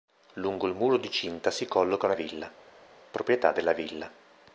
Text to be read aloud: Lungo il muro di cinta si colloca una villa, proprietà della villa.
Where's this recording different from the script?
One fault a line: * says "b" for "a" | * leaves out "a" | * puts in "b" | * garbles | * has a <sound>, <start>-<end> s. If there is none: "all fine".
all fine